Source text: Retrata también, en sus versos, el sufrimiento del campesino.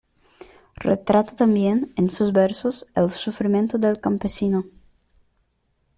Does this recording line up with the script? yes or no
yes